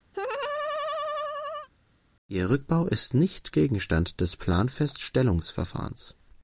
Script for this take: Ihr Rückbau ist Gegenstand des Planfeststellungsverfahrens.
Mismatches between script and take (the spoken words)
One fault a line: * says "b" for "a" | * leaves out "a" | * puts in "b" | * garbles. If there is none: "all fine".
* puts in "nicht"